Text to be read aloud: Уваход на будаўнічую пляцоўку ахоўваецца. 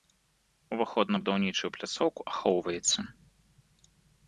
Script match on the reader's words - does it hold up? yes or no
yes